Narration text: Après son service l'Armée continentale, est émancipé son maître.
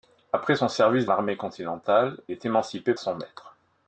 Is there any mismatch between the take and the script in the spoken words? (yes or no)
no